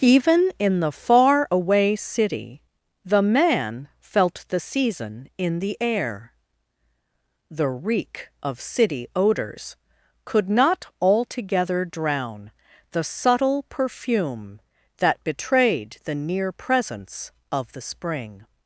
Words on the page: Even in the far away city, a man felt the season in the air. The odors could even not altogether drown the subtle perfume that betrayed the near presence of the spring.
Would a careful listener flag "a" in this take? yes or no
yes